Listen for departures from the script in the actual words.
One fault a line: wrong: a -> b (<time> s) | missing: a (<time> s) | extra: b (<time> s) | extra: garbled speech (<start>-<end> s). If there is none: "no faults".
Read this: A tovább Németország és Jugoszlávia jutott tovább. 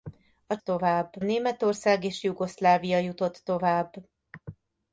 no faults